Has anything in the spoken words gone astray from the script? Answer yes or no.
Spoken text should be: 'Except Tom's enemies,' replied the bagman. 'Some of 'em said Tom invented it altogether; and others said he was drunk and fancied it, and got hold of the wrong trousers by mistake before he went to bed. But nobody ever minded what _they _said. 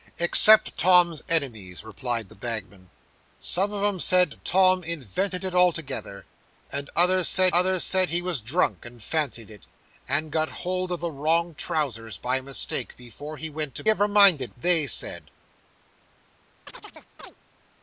yes